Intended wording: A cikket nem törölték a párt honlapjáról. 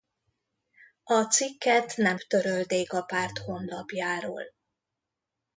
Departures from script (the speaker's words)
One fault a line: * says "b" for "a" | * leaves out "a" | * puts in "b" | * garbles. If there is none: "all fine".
all fine